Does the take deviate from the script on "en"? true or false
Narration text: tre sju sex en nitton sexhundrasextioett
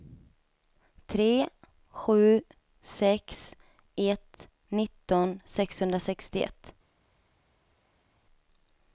true